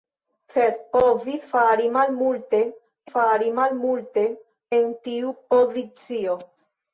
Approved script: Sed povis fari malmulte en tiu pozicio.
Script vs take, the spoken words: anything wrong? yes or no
yes